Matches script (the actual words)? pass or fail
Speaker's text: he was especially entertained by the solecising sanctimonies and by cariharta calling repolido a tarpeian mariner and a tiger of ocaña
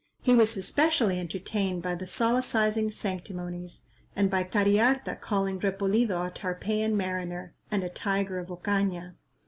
pass